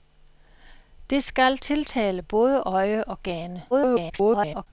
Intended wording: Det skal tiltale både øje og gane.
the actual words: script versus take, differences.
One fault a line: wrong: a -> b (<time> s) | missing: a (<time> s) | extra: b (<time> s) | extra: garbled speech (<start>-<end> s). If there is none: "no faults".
extra: garbled speech (3.7-4.7 s)